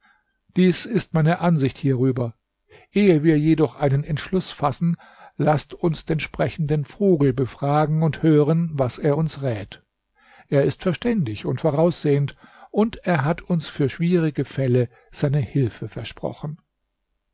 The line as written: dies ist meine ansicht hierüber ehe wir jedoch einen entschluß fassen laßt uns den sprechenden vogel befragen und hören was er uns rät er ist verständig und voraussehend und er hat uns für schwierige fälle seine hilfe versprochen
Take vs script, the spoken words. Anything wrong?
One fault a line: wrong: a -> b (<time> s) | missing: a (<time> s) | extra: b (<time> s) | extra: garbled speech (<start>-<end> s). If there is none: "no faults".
no faults